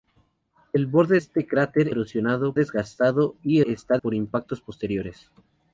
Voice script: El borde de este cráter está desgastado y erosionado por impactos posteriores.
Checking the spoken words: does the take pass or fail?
fail